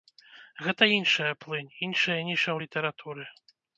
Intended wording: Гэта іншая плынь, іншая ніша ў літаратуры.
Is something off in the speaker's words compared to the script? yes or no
no